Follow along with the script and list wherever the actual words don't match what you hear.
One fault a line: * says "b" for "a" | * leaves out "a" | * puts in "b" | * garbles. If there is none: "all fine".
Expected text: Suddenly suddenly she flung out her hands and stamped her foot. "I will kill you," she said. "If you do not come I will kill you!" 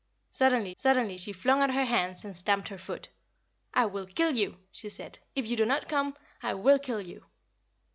all fine